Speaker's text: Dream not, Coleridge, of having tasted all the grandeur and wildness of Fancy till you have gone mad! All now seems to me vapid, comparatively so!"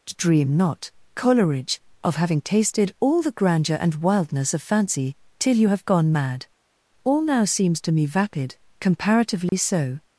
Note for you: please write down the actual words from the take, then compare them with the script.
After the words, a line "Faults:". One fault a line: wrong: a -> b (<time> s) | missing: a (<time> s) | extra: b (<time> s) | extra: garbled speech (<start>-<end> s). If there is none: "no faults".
Dream not, Coleridge, of having tasted all the grandeur and wildness of Fancy till you have gone mad! All now seems to me vapid, comparatively so!"
Faults:
no faults